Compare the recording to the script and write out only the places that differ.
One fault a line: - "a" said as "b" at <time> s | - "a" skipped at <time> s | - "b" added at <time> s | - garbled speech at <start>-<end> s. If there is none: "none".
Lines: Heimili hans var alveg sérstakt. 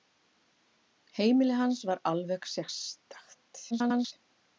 - garbled speech at 3.7-4.1 s